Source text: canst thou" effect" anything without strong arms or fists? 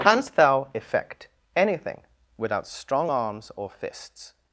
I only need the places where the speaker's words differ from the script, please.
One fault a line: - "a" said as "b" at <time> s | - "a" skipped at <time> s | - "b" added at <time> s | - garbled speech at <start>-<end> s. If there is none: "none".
none